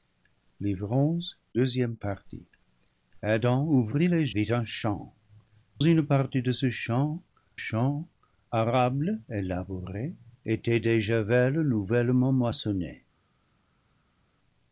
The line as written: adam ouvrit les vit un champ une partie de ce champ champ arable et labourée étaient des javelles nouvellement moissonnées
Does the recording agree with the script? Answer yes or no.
yes